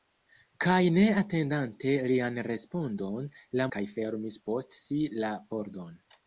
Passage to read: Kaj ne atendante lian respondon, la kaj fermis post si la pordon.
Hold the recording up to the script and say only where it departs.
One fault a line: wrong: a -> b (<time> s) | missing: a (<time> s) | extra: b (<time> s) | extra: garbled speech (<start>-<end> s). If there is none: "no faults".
no faults